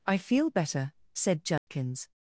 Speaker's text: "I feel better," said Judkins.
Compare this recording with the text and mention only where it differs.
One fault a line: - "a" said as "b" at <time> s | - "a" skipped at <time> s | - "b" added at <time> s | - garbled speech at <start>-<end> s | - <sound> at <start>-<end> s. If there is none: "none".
- dropout at 1.6-1.7 s